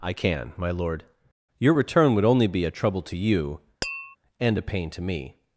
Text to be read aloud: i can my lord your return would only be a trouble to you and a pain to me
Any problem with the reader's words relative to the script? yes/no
no